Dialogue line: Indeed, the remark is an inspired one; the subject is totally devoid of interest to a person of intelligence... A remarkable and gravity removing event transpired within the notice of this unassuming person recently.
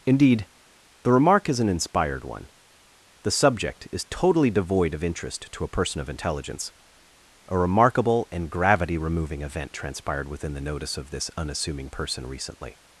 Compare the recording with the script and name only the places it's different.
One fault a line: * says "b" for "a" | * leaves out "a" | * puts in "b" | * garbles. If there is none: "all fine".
all fine